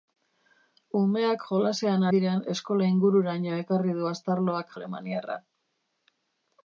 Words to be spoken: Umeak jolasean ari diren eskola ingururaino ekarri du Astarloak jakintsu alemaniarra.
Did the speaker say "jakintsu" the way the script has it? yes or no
no